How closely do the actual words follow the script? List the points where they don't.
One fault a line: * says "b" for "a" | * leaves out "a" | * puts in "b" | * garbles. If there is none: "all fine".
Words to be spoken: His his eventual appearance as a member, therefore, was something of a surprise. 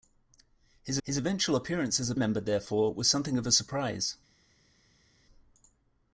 all fine